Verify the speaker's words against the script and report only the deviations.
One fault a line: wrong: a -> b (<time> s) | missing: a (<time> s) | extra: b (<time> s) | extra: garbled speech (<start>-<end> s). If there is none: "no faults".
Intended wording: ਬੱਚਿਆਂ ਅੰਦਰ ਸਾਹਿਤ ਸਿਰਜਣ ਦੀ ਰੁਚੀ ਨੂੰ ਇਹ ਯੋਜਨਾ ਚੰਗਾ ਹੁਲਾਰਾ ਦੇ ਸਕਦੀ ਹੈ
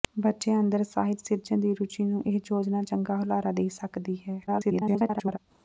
extra: garbled speech (4.5-5.4 s)